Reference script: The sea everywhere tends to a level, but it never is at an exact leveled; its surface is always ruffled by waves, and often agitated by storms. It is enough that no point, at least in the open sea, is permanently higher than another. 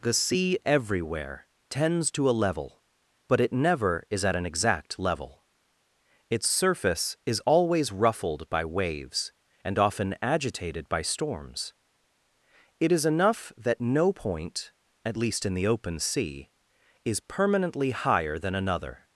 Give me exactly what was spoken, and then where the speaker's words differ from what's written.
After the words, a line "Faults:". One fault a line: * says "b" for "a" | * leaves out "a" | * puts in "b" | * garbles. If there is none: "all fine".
The sea everywhere tends to a level, but it never is at an exact level; its surface is always ruffled by waves, and often agitated by storms. It is enough that no point, at least in the open sea, is permanently higher than another.
Faults:
* says "level" for "leveled"